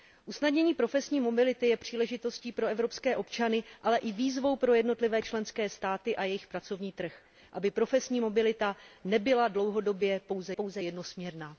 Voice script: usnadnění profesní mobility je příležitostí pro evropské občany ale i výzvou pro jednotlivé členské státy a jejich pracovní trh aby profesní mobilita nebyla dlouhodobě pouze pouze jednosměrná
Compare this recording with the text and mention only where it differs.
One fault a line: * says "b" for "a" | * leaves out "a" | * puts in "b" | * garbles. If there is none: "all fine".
all fine